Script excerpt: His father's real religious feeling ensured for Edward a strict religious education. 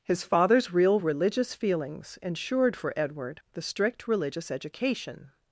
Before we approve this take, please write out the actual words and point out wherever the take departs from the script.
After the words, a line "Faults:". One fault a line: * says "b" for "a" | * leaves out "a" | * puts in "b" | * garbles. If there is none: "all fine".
His father's real religious feelings ensured for Edward the strict religious education.
Faults:
* says "feelings" for "feeling"
* says "the" for "a"